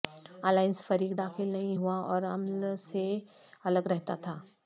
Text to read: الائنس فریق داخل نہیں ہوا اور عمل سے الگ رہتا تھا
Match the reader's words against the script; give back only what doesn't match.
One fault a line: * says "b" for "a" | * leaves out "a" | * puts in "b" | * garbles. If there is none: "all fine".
all fine